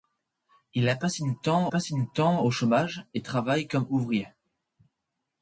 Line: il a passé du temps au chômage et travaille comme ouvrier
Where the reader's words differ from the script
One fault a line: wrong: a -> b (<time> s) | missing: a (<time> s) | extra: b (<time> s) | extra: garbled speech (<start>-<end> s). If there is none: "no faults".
extra: passé du temps (1.7 s)